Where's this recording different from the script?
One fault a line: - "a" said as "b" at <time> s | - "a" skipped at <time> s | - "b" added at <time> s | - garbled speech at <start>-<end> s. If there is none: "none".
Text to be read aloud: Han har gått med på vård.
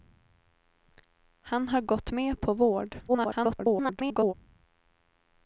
- garbled speech at 3.1-4.3 s